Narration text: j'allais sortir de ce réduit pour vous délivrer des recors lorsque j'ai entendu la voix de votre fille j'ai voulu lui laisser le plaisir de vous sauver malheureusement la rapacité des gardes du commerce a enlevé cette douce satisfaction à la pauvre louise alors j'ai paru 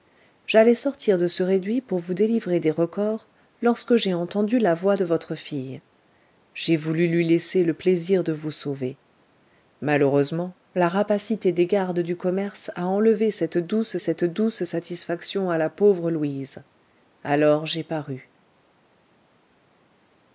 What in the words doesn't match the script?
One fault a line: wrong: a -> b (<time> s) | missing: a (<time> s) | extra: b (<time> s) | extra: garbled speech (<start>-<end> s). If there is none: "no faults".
extra: cette douce (14.0 s)